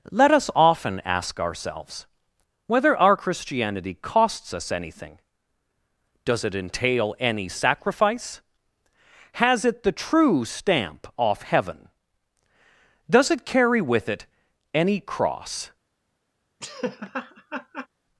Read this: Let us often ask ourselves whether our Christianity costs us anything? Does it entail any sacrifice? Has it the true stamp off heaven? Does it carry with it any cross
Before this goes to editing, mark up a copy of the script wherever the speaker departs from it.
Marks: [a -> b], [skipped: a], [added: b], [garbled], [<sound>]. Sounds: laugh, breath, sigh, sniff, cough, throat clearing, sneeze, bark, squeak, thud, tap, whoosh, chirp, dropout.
Let us often ask ourselves whether our Christianity costs us anything? Does it entail any sacrifice? Has it the true stamp off heaven? Does it carry with it any cross [laugh]